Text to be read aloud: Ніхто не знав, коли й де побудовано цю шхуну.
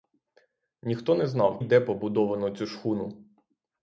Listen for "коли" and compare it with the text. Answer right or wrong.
wrong